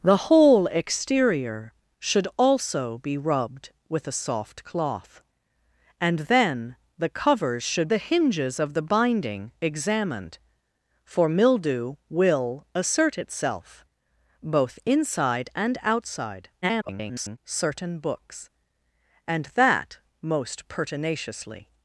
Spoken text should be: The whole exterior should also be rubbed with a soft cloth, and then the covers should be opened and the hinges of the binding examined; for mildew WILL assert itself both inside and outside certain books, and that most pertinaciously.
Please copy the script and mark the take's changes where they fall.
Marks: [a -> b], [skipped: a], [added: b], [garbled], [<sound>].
The whole exterior should also be rubbed with a soft cloth, and then the covers should [skipped: be opened and] the hinges of the binding examined; for mildew WILL assert itself both inside and outside [garbled] certain books, and that most pertinaciously.